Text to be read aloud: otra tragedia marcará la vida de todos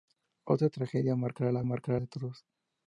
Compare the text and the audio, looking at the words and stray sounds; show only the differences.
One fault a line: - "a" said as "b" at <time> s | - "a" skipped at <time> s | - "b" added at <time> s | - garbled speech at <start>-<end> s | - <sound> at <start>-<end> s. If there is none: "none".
- "vida" said as "marcará" at 1.6 s